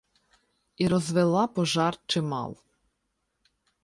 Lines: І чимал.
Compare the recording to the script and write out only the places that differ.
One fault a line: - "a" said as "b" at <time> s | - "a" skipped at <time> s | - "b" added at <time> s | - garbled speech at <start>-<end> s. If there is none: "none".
- "розвела пожар" added at 0.9 s